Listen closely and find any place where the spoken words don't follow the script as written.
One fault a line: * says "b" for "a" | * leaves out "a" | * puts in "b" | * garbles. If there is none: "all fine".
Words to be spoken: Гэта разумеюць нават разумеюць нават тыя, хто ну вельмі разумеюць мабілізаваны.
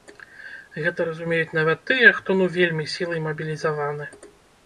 * leaves out "разумеюць нават"
* says "сілай" for "разумеюць"